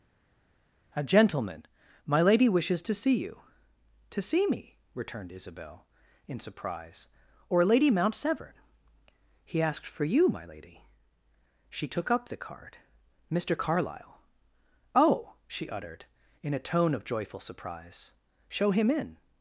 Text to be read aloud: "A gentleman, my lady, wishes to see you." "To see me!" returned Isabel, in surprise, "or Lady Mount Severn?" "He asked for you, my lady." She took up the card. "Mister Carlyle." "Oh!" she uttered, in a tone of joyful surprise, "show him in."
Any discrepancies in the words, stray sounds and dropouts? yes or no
no